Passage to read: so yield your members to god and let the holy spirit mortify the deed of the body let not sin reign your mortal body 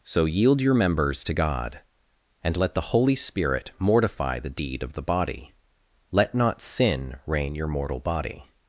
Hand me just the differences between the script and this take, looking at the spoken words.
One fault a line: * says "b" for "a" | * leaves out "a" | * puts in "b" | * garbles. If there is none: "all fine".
all fine